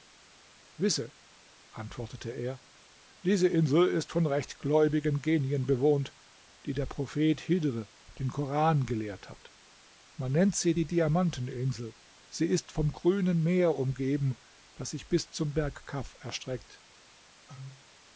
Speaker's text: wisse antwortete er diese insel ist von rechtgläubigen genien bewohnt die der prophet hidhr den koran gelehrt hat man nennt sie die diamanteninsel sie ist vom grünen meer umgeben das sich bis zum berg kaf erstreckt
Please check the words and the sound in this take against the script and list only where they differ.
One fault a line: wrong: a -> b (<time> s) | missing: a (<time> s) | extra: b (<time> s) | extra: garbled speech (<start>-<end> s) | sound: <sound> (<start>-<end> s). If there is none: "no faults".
sound: cough (17.5-17.9 s)